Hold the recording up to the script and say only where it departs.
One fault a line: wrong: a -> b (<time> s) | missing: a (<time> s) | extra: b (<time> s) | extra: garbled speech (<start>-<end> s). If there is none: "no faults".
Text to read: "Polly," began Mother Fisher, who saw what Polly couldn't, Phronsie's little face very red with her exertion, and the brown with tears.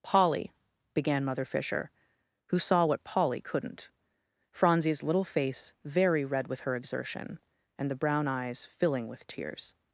extra: eyes filling (8.3 s)